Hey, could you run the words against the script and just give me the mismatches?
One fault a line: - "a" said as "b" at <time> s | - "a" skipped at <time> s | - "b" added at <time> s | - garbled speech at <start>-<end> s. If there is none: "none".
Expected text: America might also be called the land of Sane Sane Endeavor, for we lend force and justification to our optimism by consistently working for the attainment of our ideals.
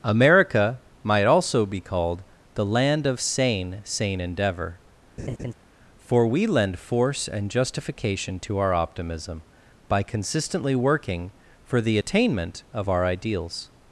none